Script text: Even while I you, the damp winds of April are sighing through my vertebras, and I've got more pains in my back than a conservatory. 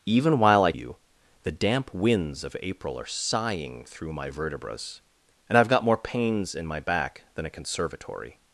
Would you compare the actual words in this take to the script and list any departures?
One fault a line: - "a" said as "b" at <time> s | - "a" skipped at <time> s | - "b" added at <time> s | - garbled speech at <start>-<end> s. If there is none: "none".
none